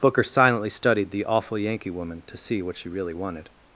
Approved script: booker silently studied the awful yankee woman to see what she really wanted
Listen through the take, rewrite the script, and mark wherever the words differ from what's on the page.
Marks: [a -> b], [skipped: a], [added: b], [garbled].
booker silently studied the awful yankee woman to see what she really wanted